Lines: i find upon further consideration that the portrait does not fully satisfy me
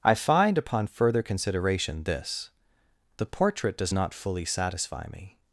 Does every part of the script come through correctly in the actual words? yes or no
no